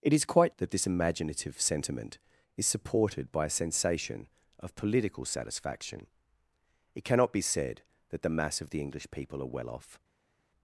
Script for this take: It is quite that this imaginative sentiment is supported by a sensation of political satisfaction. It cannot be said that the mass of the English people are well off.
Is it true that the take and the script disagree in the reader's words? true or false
false